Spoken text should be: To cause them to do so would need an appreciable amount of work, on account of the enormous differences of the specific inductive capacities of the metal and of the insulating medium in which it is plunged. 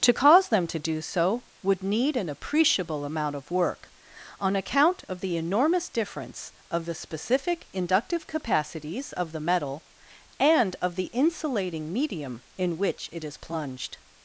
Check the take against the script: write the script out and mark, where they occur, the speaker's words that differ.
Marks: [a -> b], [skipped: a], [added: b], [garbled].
To cause them to do so would need an appreciable amount of work, on account of the enormous [differences -> difference] of the specific inductive capacities of the metal and of the insulating medium in which it is plunged.